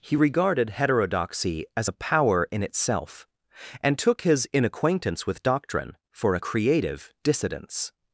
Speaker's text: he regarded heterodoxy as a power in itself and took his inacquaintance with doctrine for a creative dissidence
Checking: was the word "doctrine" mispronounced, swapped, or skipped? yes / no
no